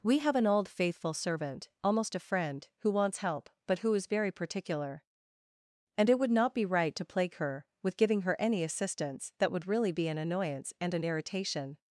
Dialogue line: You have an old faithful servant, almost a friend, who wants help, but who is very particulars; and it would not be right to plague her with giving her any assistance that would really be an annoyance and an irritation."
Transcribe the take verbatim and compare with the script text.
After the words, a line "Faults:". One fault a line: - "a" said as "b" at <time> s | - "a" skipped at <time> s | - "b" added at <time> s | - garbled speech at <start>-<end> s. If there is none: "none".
We have an old faithful servant, almost a friend, who wants help, but who is very particular; and it would not be right to plague her with giving her any assistance that would really be an annoyance and an irritation."
Faults:
- "You" said as "We" at 0.0 s
- "particulars" said as "particular" at 4.3 s